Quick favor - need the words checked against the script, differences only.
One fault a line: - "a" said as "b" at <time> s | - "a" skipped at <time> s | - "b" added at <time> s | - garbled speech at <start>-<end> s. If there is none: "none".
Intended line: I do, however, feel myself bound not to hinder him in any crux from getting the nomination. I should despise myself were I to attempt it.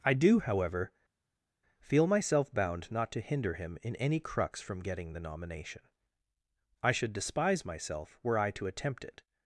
none